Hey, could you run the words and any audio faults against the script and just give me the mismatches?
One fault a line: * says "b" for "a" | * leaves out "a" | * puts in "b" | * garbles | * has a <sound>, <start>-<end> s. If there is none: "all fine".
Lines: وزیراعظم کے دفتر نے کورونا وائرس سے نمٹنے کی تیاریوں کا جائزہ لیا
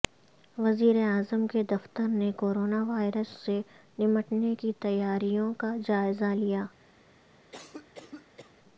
* has a cough, 7.5-8.5 s